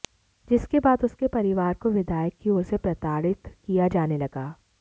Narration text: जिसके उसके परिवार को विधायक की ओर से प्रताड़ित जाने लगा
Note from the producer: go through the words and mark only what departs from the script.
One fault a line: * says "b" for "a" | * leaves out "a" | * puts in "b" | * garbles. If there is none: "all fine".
* puts in "बाद"
* puts in "किया"